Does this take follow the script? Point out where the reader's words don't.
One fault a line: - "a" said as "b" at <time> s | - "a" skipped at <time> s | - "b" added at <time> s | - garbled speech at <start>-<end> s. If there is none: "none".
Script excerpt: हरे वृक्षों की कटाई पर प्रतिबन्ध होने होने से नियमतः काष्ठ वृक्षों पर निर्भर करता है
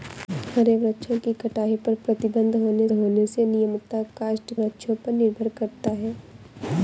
none